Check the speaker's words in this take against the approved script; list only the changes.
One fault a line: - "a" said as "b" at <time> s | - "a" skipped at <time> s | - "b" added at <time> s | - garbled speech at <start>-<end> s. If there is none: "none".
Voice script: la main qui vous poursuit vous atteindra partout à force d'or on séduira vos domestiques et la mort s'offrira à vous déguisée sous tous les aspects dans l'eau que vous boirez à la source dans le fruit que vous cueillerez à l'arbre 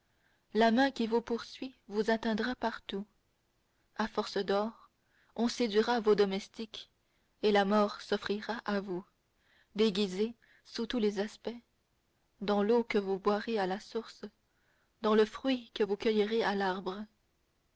none